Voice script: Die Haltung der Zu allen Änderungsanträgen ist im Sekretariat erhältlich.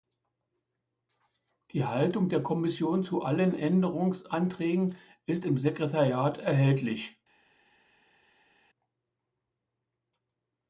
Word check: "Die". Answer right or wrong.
right